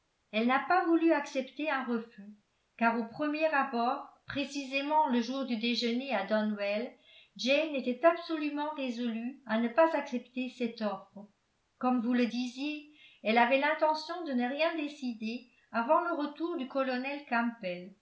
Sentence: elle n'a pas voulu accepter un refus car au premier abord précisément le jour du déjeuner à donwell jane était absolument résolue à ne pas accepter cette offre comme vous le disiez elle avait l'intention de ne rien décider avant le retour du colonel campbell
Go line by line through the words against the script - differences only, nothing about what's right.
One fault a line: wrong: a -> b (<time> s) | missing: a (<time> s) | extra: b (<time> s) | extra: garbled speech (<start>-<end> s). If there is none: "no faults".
no faults